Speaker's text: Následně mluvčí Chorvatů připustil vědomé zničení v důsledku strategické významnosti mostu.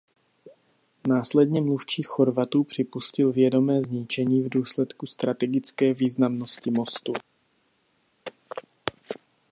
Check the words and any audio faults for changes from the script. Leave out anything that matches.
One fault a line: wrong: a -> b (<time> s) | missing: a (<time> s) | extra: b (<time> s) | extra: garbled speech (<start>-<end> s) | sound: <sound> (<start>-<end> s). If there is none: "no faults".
no faults